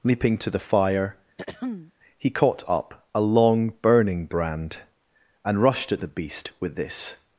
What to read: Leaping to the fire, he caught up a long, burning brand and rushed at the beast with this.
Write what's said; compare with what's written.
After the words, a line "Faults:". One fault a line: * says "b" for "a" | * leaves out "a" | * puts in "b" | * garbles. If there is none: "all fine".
Leaping to the fire, he caught up a long, burning brand and rushed at the beast with this.
Faults:
all fine